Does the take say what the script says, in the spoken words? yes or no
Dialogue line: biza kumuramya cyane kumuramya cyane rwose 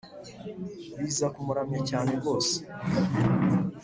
no